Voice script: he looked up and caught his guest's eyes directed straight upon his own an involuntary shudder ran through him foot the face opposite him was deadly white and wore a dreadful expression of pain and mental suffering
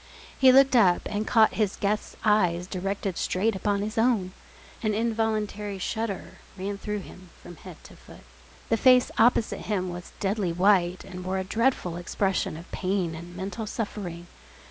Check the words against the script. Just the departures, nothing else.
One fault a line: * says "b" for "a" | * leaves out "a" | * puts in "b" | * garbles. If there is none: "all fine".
* puts in "from head to"